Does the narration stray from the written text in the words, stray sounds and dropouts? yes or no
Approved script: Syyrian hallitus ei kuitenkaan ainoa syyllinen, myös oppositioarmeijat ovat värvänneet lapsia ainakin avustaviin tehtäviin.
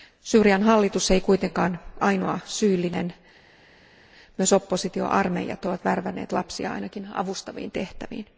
no